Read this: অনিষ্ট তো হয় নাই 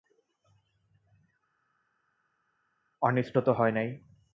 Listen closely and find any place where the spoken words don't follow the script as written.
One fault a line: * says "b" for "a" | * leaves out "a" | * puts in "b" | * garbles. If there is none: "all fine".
all fine